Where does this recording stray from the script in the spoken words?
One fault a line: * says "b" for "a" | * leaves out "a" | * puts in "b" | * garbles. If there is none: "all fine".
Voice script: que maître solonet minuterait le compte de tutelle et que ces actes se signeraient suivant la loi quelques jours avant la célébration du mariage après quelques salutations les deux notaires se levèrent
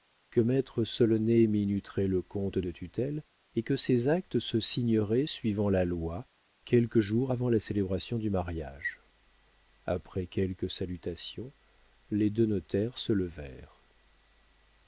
all fine